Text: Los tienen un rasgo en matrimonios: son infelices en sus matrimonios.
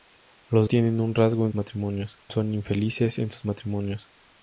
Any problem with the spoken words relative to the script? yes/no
no